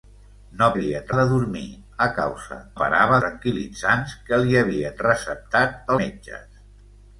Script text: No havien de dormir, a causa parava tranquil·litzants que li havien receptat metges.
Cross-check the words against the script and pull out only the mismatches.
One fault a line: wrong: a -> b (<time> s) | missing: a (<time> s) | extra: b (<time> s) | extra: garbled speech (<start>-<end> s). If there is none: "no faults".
no faults